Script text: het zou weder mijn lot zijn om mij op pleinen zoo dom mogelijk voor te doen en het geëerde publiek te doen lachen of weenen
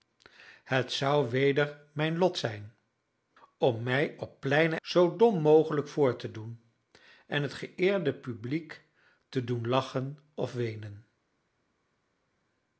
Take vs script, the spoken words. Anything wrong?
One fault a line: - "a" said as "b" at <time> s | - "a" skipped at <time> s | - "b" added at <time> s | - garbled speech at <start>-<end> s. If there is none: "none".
none